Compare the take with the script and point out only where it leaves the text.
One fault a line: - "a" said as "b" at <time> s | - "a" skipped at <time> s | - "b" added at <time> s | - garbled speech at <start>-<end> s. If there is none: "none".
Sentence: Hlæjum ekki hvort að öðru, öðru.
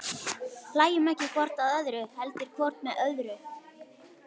- "heldur hvort með" added at 2.2 s